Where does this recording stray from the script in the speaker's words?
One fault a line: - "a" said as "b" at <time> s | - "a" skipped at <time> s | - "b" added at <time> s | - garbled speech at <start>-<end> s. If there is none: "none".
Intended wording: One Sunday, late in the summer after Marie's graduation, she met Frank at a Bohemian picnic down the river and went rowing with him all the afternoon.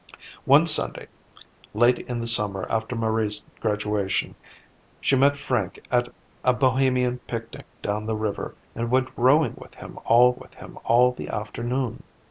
- "with him all" added at 10.4 s